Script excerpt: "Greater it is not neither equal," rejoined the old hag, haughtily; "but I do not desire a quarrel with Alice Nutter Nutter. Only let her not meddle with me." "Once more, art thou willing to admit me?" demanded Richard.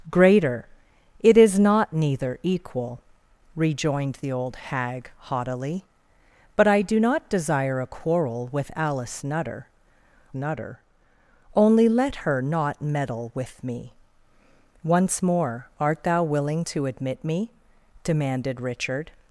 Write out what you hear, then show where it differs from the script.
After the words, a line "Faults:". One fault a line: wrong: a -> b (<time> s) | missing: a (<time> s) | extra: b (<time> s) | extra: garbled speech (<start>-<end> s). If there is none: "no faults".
"Greater it is not neither equal," rejoined the old hag, haughtily; "but I do not desire a quarrel with Alice Nutter Nutter. Only let her not meddle with me." "Once more, art thou willing to admit me?" demanded Richard.
Faults:
no faults